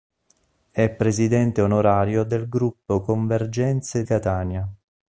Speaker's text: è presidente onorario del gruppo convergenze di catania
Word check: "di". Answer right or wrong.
wrong